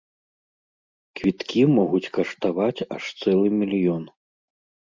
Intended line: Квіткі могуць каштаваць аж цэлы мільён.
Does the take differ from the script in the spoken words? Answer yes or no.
no